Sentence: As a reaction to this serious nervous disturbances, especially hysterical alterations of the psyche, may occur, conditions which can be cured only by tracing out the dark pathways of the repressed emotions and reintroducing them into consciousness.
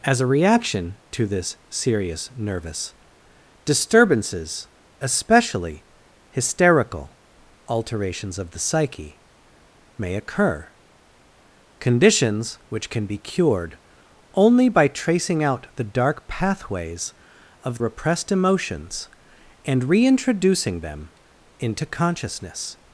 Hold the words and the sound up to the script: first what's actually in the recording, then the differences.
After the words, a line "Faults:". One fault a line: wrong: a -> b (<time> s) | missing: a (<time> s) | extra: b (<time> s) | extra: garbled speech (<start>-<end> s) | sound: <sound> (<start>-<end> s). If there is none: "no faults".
As a reaction to this serious nervous disturbances, especially hysterical alterations of the psyche, may occur, conditions which can be cured only by tracing out the dark pathways of repressed emotions and reintroducing them into consciousness.
Faults:
missing: the (17.8 s)